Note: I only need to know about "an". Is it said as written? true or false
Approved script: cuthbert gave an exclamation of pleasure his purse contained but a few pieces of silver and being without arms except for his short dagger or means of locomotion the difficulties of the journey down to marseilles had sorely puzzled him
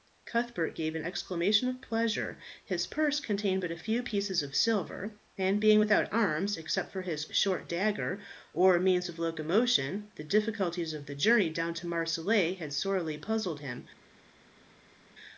true